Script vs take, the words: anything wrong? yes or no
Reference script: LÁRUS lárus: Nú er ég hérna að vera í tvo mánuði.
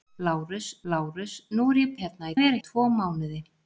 no